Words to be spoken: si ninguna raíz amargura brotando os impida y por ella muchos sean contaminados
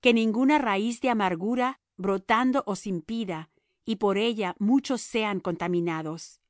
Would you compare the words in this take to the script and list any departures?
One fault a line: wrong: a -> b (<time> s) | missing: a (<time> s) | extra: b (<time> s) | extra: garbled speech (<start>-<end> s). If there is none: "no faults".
wrong: si -> que (0.0 s)
extra: de (1.0 s)